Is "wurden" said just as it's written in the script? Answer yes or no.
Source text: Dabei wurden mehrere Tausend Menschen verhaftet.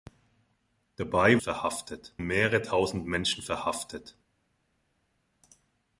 no